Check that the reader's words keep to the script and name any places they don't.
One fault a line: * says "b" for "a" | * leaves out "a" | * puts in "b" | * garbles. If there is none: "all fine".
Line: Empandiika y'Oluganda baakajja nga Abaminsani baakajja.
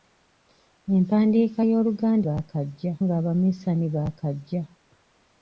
all fine